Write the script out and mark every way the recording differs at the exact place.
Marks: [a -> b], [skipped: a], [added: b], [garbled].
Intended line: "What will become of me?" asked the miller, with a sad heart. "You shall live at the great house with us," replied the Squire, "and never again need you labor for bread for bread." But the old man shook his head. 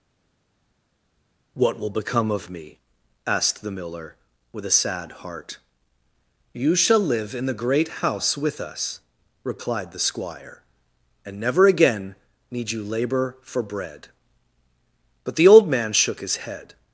"What will become of me?" asked the miller, with a sad heart. "You shall live [at -> in] the great house with us," replied the Squire, "and never again need you labor for bread [skipped: for bread."] But the old man shook his head.